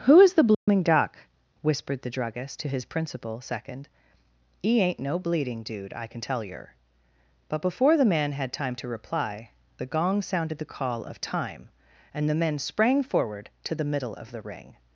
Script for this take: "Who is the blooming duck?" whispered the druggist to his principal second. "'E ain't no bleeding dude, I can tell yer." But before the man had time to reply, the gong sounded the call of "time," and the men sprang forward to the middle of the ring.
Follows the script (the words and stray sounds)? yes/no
no